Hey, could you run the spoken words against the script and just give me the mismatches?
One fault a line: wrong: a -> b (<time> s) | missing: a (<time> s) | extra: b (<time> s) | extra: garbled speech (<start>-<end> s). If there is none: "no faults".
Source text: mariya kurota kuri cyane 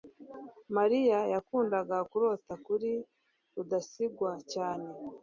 extra: yakundaga (1.3 s)
extra: rudasingwa (3.5 s)